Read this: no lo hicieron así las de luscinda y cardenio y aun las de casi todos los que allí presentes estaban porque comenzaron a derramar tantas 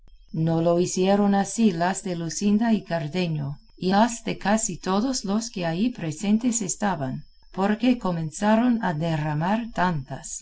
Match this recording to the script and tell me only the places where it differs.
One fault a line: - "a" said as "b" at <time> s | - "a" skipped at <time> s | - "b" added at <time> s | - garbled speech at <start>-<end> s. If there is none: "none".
- "aun" skipped at 3.9 s